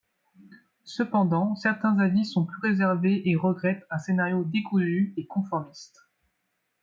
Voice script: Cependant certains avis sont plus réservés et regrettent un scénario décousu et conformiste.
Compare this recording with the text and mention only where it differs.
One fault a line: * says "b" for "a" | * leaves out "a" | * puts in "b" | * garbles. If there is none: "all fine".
all fine